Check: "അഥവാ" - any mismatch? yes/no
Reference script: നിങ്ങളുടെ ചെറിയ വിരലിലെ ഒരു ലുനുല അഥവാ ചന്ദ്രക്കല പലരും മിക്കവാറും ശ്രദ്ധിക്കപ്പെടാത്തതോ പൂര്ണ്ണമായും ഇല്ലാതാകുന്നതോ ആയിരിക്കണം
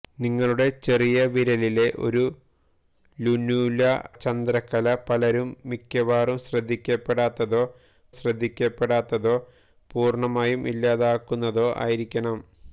yes